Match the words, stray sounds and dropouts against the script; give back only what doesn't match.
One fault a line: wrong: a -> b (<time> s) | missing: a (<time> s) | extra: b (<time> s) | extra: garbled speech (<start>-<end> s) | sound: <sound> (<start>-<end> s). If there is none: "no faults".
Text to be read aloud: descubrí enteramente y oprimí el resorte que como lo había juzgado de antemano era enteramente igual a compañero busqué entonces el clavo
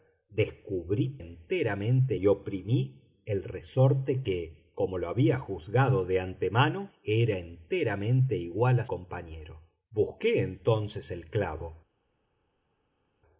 no faults